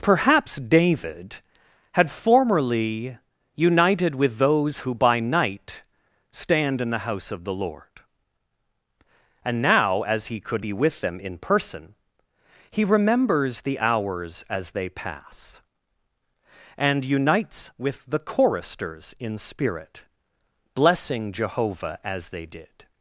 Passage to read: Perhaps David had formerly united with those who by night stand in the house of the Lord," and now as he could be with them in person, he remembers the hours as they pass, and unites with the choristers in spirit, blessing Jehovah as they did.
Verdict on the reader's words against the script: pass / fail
pass